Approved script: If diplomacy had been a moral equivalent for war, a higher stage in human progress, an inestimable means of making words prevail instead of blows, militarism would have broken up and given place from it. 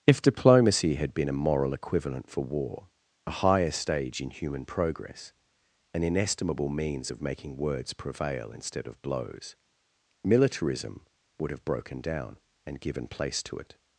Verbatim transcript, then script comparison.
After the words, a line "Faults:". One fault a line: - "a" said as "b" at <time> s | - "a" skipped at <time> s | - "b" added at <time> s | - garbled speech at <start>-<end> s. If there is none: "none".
If diplomacy had been a moral equivalent for war, a higher stage in human progress, an inestimable means of making words prevail instead of blows, militarism would have broken down and given place to it.
Faults:
- "up" said as "down" at 12.0 s
- "from" said as "to" at 13.4 s